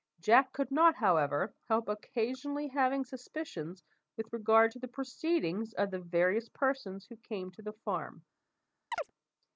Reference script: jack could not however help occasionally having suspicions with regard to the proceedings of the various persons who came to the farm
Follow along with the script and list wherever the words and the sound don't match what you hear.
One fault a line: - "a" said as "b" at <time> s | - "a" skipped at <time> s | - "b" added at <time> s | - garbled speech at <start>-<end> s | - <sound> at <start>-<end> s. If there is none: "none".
- chirp at 8.9-9.1 s